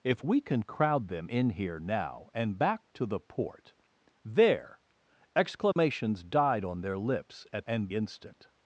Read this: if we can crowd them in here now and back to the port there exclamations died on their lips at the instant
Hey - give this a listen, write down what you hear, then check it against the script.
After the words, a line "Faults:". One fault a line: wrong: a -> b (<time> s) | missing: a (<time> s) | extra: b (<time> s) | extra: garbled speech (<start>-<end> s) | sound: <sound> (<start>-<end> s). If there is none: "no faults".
if we can crowd them in here now and back to the port there exclamations died on their lips at and instant
Faults:
sound: dropout (5.7-5.8 s)
wrong: the -> and (7.7 s)